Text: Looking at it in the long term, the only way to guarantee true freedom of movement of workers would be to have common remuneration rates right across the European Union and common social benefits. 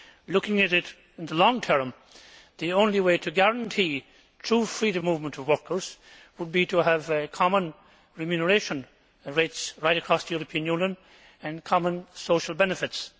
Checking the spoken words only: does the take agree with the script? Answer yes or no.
no